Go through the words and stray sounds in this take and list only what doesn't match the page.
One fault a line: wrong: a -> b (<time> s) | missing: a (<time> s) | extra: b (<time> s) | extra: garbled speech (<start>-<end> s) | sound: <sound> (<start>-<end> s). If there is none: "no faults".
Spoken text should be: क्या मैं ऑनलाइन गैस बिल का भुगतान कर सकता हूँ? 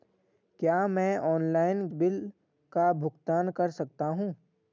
missing: गैस (1.9 s)